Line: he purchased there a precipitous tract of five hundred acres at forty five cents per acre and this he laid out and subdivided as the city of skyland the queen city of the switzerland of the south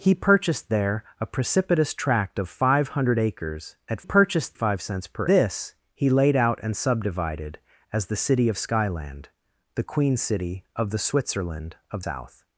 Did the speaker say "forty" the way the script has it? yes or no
no